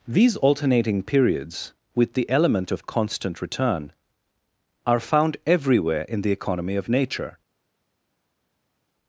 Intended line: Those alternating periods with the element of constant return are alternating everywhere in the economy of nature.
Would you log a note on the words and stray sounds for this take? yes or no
yes